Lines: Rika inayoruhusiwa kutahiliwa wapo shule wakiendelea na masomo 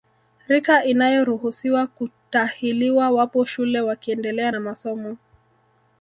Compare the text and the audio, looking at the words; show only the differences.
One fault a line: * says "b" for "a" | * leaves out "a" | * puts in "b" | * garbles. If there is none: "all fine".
all fine